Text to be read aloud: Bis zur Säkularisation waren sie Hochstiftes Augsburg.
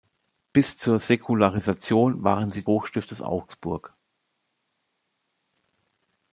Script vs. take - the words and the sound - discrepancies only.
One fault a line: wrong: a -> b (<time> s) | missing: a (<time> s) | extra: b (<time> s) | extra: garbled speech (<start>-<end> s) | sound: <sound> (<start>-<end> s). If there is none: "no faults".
no faults